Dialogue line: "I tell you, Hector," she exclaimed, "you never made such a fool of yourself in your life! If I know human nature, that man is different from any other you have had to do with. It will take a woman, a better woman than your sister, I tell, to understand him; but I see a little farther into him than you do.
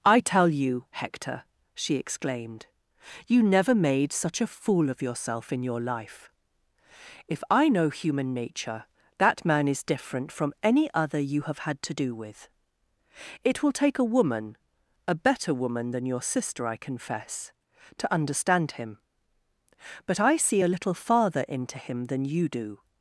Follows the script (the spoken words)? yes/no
no